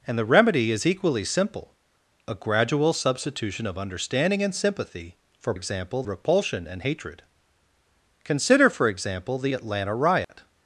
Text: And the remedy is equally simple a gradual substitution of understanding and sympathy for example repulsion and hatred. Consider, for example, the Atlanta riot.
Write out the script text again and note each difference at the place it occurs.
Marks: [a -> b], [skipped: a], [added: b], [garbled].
And the remedy is equally simple a gradual substitution of understanding and sympathy for example repulsion and hatred. Consider, for example, the Atlanta riot.